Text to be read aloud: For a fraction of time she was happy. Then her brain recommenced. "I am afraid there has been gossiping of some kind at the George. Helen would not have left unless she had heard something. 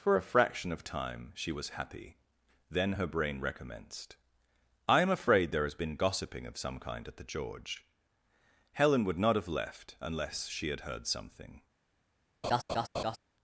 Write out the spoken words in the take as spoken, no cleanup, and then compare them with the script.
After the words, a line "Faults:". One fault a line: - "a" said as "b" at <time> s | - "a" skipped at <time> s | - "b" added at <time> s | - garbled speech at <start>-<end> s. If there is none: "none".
For a fraction of time she was happy. Then her brain recommenced. "I am afraid there has been gossiping of some kind at the George. Helen would not have left unless she had heard something.
Faults:
none